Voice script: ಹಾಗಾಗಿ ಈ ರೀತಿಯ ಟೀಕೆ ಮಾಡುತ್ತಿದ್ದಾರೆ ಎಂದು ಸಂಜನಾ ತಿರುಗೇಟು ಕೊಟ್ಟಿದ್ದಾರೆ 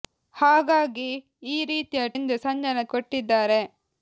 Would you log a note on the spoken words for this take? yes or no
yes